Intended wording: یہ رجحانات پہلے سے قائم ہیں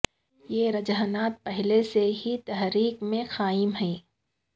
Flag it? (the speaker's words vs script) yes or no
yes